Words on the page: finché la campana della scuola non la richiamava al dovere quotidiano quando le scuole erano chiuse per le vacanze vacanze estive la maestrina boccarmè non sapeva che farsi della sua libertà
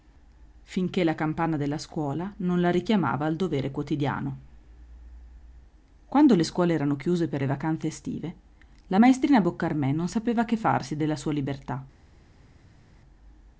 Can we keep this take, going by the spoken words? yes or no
no